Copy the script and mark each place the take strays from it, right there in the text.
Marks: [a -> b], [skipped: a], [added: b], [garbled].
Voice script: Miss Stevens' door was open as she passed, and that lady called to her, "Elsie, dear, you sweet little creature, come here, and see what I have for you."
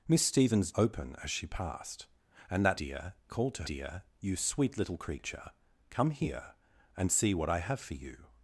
Miss Stevens' [skipped: door was] open as she passed, and that [lady -> dear] called to [skipped: her, "Elsie,] dear, you sweet little creature, come here, and see what I have for you."